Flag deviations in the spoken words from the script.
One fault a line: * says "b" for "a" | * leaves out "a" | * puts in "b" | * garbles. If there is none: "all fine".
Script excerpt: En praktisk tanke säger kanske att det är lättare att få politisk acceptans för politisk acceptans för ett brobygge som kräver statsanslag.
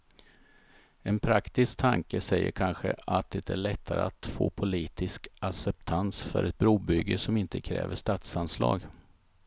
* leaves out "politisk acceptans för"
* puts in "inte"